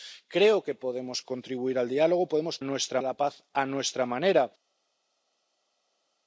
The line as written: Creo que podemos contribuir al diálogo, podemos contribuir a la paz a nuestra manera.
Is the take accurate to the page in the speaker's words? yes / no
no